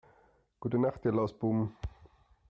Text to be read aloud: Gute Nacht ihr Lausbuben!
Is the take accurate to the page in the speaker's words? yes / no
yes